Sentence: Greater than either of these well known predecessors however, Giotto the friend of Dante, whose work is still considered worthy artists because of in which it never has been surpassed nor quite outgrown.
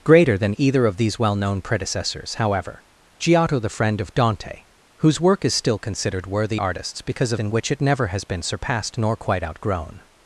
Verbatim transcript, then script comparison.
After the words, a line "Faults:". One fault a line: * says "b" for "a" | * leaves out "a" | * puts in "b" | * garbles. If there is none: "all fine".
Greater than either of these well known predecessors however, Giotto the friend of Dante, whose work is still considered worthy artists because of in which it never has been surpassed nor quite outgrown.
Faults:
all fine